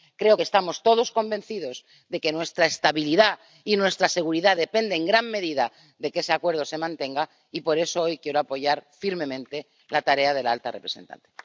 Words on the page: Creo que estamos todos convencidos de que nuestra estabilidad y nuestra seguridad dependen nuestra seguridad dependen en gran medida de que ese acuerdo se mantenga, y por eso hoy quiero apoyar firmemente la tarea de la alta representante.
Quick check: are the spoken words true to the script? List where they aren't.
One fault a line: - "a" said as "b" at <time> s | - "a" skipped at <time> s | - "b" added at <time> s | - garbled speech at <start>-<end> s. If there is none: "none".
- "nuestra seguridad dependen" skipped at 5.0 s